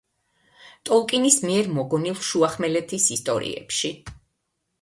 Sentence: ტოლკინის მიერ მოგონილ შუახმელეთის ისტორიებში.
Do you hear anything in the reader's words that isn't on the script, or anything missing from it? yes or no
no